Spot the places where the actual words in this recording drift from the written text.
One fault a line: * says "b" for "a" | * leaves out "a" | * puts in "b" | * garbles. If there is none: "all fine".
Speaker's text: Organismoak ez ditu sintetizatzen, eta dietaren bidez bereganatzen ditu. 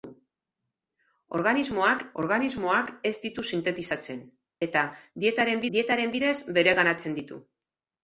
* puts in "organismoak"
* puts in "dietaren"